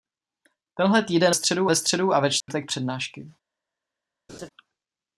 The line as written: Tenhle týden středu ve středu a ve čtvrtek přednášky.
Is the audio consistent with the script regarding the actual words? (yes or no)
yes